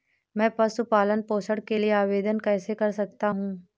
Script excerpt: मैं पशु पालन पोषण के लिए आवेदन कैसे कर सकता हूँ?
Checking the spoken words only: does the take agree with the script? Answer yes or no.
yes